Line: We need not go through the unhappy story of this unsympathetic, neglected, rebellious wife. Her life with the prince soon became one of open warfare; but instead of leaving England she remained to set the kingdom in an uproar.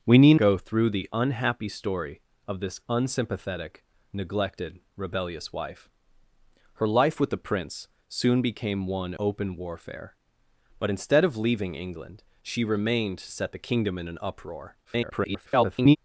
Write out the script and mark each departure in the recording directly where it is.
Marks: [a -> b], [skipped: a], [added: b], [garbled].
We need [skipped: not] go through the unhappy story of this unsympathetic, neglected, rebellious wife. Her life with the prince soon became one [skipped: of] open warfare; but instead of leaving England she remained to set the kingdom in an uproar. [garbled]